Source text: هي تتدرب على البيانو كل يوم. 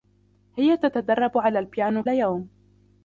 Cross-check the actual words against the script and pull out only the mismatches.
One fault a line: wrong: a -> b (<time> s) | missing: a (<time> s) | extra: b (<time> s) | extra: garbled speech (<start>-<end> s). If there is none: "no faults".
missing: كل (2.0 s)